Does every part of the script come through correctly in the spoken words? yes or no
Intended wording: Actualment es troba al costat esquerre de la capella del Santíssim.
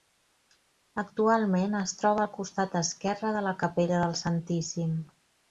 yes